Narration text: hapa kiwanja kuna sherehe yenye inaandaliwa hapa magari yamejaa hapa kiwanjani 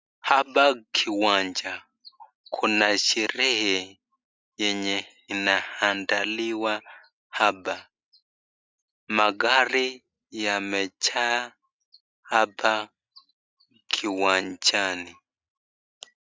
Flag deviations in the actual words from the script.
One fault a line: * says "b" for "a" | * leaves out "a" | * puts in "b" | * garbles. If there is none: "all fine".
all fine